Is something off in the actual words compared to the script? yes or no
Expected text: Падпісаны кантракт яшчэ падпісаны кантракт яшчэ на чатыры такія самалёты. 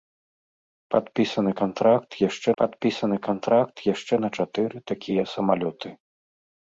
no